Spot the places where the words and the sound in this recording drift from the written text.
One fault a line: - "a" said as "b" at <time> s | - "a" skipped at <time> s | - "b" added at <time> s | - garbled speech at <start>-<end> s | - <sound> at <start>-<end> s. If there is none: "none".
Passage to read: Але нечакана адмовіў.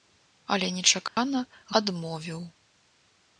- dropout at 1.1-1.2 s